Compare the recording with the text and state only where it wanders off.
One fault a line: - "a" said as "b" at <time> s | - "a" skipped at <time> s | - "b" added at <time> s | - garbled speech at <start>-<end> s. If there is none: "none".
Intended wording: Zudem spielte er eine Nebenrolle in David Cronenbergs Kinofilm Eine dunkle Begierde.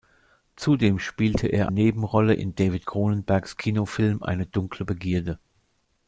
- "eine" skipped at 1.7 s